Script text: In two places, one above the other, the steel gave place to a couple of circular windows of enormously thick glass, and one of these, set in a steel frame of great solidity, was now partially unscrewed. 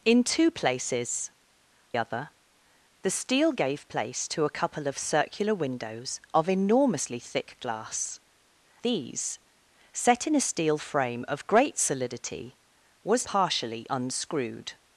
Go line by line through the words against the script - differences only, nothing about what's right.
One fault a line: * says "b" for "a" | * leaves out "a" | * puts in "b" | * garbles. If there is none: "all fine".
* leaves out "one above the"
* leaves out "and one of"
* leaves out "now"